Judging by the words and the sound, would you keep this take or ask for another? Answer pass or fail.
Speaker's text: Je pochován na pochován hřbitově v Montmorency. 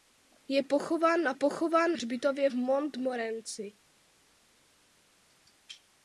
pass